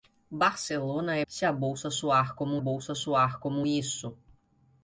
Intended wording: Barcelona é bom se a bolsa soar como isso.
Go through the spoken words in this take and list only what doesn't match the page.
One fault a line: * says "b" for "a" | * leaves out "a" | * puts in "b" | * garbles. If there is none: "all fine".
* leaves out "bom"
* puts in "bolsa soar como"